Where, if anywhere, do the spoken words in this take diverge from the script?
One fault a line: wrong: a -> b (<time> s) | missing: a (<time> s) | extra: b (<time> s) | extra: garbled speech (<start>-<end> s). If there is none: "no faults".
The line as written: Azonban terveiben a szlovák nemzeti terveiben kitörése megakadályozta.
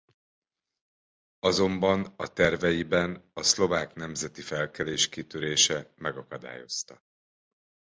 extra: a (2.1 s)
wrong: terveiben -> felkelés (4.4 s)